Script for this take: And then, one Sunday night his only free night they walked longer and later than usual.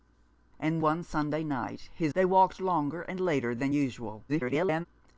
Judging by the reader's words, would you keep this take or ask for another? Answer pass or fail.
fail